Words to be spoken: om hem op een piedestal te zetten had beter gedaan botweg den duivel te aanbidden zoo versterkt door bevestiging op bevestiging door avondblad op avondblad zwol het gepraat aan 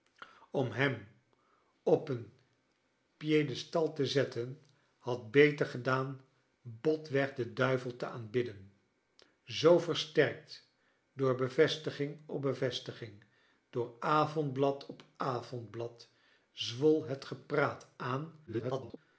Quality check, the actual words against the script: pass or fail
fail